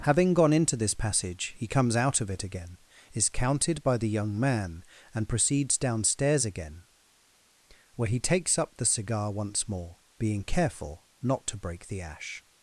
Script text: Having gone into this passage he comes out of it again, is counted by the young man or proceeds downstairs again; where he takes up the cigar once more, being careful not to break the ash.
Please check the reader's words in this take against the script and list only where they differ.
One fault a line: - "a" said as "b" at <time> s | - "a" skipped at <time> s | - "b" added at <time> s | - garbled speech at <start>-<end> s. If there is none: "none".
- "or" said as "and" at 5.1 s